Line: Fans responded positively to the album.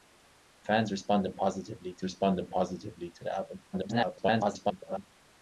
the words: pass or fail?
fail